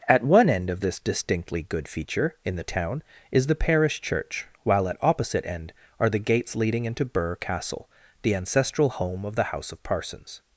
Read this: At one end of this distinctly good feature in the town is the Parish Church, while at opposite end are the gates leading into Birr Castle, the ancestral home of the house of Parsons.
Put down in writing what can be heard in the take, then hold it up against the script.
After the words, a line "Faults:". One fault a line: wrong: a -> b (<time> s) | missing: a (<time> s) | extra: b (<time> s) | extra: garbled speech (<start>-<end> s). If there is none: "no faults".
At one end of this distinctly good feature in the town is the Parish Church, while at opposite end are the gates leading into Birr Castle, the ancestral home of the house of Parsons.
Faults:
no faults